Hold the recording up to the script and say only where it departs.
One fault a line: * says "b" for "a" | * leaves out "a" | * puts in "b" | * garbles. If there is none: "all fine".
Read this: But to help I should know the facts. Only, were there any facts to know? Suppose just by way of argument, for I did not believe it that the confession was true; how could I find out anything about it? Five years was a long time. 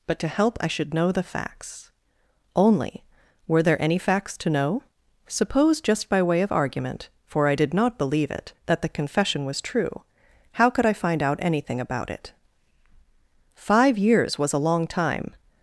all fine